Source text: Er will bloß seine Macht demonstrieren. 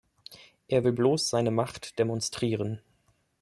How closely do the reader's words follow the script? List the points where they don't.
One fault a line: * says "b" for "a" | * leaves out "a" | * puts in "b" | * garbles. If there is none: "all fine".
all fine